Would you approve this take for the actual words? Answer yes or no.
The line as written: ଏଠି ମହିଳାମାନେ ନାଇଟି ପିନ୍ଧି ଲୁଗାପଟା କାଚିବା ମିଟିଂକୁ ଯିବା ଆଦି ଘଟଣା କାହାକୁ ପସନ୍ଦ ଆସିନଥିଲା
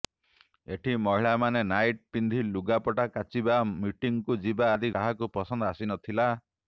no